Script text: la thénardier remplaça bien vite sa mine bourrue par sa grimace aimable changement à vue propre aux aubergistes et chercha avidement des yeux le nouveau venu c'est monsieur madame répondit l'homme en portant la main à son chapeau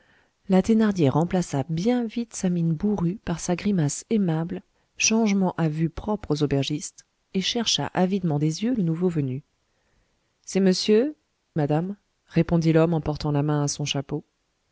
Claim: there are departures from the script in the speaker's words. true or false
false